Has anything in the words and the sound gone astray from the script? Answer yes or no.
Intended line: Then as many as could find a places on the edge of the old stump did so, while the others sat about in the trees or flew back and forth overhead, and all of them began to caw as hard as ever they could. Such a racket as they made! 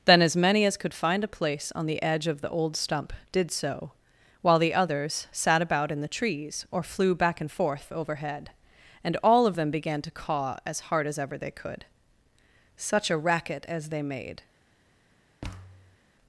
yes